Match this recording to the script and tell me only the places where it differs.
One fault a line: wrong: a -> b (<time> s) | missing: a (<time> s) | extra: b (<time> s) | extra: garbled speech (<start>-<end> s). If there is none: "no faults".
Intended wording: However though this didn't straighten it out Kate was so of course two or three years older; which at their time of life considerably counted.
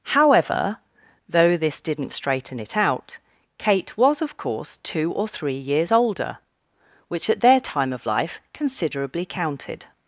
missing: so (4.2 s)